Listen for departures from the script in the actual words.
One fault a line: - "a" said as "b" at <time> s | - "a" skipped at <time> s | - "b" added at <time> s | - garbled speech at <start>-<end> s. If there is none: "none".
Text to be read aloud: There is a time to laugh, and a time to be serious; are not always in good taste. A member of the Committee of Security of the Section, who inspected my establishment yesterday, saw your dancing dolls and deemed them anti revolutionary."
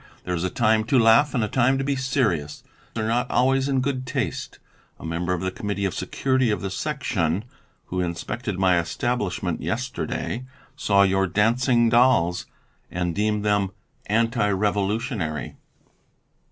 none